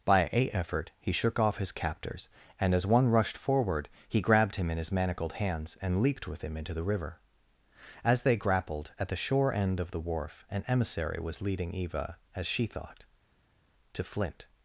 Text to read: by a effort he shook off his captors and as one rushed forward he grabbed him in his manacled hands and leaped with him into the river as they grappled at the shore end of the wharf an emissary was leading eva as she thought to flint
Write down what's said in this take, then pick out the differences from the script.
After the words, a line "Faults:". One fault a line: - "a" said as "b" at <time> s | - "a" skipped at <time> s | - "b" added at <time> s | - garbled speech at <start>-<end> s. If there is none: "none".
by a effort he shook off his captors and as one rushed forward he grabbed him in his manacled hands and leaped with him into the river as they grappled at the shore end of the wharf an emissary was leading eva as she thought to flint
Faults:
none